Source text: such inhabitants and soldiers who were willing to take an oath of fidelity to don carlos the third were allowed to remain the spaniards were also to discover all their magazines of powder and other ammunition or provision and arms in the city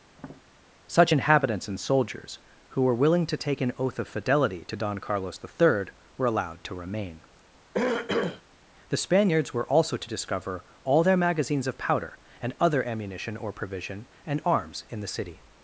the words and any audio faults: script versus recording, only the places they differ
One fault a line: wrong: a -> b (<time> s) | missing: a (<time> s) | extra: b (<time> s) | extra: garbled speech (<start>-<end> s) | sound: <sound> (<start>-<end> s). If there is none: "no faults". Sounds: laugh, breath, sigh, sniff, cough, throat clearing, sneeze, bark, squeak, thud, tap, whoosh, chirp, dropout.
sound: tap (0.1-0.4 s)
sound: throat clearing (7.7-8.4 s)